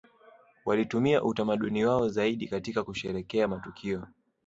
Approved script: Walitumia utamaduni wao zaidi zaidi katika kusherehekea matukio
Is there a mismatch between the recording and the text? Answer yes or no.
yes